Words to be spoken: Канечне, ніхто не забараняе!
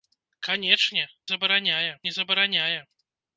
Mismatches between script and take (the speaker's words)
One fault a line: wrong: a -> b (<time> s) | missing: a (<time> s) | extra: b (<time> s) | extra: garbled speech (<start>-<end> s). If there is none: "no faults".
wrong: ніхто -> забараняе (1.3 s)